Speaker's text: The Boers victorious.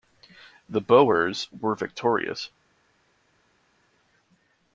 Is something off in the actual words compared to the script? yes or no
yes